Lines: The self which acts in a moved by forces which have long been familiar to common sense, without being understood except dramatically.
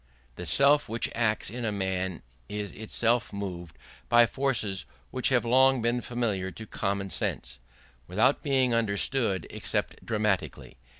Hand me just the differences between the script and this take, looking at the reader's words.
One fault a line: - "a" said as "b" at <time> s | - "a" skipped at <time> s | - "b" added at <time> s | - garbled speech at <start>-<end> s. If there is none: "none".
- "man is itself" added at 1.7 s